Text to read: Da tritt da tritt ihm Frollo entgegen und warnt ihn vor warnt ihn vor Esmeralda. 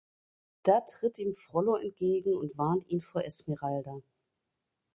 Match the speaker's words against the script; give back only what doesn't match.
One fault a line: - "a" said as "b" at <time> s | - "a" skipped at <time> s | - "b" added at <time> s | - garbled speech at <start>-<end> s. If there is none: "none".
- "da tritt" skipped at 1.2 s
- "warnt ihn vor" skipped at 3.2 s